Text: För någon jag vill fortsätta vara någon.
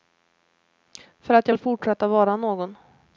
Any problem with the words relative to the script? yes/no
yes